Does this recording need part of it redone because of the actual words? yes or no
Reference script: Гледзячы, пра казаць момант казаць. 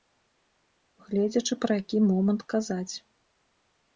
yes